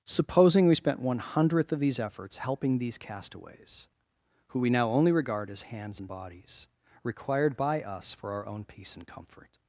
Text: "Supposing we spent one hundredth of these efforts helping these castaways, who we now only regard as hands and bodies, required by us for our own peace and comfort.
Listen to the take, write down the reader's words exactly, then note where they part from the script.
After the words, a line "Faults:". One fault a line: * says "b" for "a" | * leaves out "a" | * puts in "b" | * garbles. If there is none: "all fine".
"Supposing we spent one hundredth of these efforts helping these castaways, who we now only regard as hands and bodies, required by us for our own peace and comfort.
Faults:
all fine